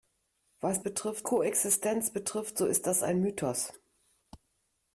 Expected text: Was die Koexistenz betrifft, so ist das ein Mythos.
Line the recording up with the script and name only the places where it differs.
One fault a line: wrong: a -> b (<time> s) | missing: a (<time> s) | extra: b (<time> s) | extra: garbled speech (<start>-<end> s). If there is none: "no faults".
wrong: die -> betrifft (0.8 s)